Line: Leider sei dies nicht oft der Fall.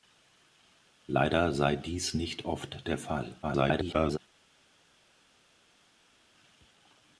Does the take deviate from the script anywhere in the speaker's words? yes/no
yes